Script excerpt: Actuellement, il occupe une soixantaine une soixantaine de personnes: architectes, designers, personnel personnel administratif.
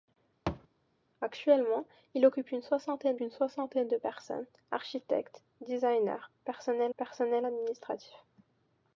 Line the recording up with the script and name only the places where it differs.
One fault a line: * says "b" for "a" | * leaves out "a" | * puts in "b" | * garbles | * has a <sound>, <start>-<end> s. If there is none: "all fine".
* has a thud, 0.5-0.7 s